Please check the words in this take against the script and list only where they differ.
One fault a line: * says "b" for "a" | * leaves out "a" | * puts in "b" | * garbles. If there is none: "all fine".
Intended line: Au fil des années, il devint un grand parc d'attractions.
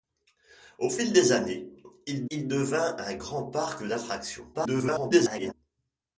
* puts in "il"
* garbles